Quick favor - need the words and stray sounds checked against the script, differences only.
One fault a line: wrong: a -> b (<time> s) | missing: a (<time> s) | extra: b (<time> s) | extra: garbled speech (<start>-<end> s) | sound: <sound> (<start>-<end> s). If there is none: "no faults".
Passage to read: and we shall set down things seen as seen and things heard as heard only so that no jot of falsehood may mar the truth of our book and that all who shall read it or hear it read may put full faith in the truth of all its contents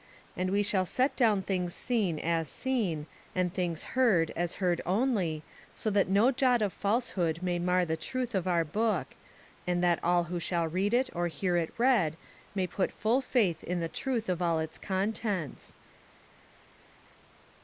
no faults